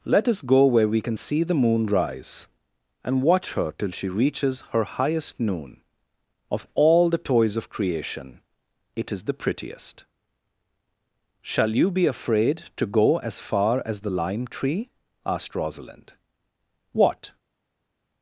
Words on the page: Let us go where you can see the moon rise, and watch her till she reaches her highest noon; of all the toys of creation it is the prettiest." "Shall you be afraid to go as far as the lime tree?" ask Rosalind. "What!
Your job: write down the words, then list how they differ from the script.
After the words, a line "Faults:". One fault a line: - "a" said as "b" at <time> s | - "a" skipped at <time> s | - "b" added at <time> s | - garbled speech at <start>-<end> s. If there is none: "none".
Let us go where we can see the moon rise, and watch her till she reaches her highest noon; of all the toys of creation it is the prettiest." "Shall you be afraid to go as far as the lime tree?" asked Rosalind. "What!
Faults:
- "you" said as "we" at 0.9 s
- "ask" said as "asked" at 15.2 s